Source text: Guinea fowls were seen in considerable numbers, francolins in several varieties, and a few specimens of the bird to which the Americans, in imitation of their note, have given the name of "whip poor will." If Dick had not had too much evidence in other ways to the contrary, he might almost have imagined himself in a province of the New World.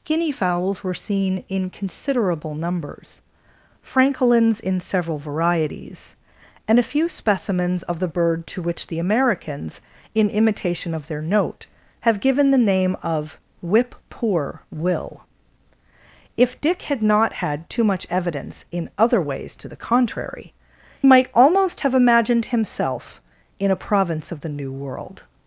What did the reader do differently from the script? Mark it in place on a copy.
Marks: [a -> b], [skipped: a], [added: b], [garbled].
Guinea fowls were seen in considerable numbers, francolins in several varieties, and a few specimens of the bird to which the Americans, in imitation of their note, have given the name of "whip poor will." If Dick had not had too much evidence in other ways to the contrary, [skipped: he] might almost have imagined himself in a province of the New World.